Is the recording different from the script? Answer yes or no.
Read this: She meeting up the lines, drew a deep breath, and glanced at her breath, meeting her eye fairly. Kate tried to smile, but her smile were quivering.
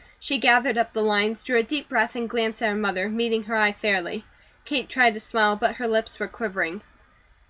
yes